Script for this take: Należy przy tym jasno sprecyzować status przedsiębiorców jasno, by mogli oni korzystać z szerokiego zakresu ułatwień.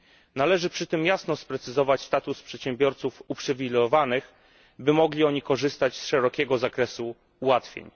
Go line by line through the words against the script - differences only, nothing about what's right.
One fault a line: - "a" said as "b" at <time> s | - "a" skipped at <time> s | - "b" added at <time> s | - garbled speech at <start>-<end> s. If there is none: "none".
- "jasno" said as "uprzywilejowanych" at 3.3 s